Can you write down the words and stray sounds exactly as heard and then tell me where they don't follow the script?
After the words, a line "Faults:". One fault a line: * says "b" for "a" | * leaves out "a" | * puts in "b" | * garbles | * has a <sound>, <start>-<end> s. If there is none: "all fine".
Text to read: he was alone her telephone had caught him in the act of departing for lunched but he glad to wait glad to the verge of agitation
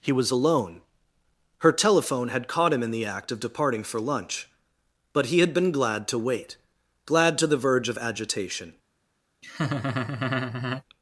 he was alone her telephone had caught him in the act of departing for lunch but he had been glad to wait glad to the verge of agitation
Faults:
* says "lunch" for "lunched"
* puts in "had been"
* has a laugh, 9.4-10.8 s